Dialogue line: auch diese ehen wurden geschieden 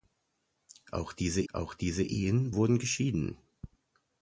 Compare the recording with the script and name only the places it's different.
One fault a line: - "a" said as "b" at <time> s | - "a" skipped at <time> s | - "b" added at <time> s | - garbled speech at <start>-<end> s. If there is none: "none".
- "auch diese" added at 1.5 s